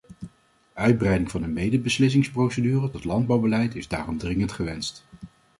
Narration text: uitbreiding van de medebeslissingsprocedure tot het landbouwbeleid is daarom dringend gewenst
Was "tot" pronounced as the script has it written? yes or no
no